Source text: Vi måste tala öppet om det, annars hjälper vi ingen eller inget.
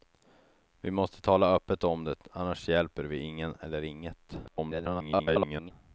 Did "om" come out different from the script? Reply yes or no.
no